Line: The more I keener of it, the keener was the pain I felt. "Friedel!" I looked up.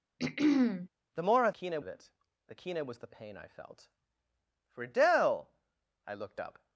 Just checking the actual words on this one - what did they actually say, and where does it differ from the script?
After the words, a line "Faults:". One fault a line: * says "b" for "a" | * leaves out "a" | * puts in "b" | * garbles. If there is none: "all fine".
The more I keener of it, the keener was the pain I felt. "Friedel!" I looked up.
Faults:
all fine